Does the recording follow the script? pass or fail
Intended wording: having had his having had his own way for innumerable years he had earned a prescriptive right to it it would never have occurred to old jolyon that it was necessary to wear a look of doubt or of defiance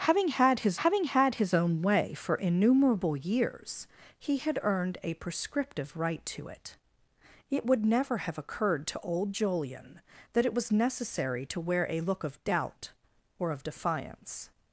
pass